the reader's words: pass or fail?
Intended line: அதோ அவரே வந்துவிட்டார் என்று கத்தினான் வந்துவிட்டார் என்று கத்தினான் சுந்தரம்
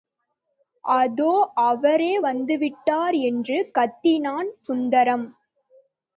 fail